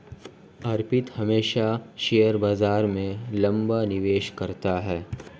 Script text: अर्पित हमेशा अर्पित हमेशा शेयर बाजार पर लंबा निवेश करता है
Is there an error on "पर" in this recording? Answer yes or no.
yes